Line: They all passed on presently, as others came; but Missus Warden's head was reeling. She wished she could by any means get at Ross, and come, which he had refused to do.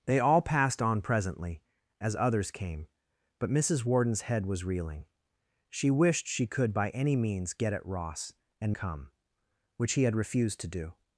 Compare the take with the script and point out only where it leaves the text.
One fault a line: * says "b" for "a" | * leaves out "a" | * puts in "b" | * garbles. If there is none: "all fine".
all fine